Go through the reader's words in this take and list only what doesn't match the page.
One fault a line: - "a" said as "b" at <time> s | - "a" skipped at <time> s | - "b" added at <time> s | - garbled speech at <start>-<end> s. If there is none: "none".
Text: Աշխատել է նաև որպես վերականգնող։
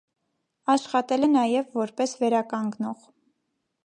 none